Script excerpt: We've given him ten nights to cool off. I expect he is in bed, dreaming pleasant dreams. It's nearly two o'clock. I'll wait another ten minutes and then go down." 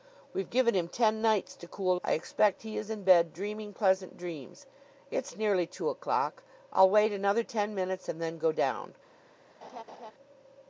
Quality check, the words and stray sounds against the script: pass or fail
fail